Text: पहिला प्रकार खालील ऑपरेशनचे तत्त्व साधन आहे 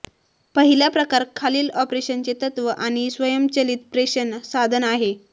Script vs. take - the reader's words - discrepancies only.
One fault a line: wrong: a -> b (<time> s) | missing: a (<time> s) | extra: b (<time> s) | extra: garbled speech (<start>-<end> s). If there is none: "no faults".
extra: आणि स्वयंचलित प्रेषण (2.7 s)